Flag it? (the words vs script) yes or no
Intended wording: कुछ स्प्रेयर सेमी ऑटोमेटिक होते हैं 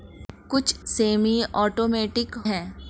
yes